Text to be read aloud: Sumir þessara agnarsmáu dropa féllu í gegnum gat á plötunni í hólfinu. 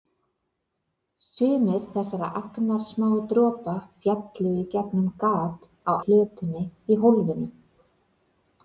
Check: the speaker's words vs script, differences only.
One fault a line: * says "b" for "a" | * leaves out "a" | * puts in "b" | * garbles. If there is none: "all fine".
all fine